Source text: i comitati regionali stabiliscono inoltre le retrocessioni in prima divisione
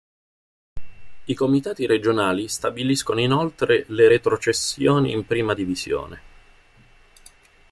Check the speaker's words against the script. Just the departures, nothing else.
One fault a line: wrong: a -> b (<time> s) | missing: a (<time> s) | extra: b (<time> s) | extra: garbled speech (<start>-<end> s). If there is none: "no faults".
no faults